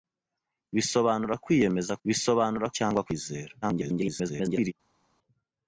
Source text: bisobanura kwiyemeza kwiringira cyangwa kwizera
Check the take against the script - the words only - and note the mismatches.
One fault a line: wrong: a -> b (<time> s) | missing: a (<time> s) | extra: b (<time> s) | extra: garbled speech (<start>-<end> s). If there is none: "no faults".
wrong: kwiringira -> bisobanura (2.1 s)
extra: garbled speech (3.6-4.7 s)